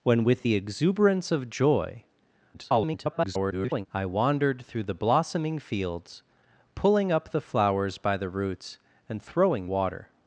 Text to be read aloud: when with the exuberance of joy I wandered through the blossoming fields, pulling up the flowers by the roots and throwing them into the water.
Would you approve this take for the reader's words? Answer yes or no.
no